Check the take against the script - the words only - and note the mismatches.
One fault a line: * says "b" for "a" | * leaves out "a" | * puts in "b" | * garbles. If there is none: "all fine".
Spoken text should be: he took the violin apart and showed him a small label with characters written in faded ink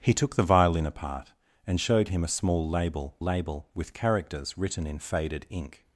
* puts in "label"